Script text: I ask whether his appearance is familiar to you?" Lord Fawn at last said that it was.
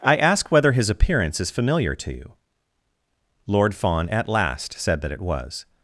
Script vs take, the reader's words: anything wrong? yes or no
no